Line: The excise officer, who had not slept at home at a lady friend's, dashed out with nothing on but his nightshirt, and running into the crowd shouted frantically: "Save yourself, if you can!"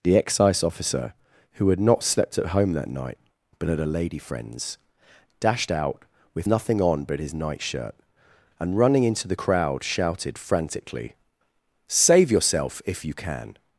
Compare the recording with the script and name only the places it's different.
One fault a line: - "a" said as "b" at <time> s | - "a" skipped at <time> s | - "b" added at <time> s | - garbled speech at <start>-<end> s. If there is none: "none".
- "that night but" added at 2.7 s